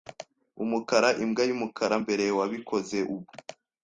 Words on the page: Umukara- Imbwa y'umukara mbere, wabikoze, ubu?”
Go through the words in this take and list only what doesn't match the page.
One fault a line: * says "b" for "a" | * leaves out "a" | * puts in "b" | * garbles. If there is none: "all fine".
all fine